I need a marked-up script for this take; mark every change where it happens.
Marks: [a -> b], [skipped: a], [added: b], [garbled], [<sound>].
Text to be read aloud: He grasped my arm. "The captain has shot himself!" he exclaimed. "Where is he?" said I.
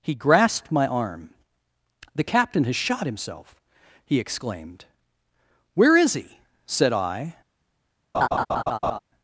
He grasped my arm. "The captain has shot himself!" he exclaimed. "Where is he?" said I. [laugh]